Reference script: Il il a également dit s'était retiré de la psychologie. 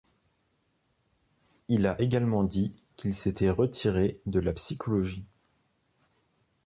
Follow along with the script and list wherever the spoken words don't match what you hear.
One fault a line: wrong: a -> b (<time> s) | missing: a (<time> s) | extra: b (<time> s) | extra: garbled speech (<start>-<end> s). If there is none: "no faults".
missing: il (1.9 s)
extra: qu'il (3.0 s)